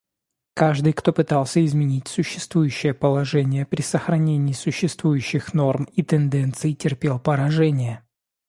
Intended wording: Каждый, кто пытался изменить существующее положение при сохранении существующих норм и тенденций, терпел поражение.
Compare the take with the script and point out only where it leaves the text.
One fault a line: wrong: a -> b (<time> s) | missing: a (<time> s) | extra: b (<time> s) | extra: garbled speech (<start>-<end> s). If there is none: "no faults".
no faults